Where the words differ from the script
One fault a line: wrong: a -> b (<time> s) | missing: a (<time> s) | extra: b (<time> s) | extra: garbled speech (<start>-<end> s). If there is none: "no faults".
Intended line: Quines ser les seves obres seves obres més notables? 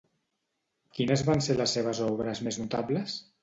extra: van (1.3 s)
missing: seves obres (2.5 s)